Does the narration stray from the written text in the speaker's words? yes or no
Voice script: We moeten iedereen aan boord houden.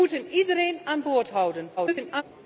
yes